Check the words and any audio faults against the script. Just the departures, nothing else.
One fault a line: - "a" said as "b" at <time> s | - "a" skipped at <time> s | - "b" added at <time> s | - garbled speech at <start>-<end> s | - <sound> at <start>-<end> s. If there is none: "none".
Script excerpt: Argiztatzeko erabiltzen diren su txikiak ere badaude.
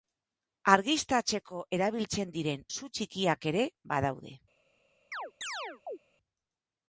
- chirp at 5.1-6.0 s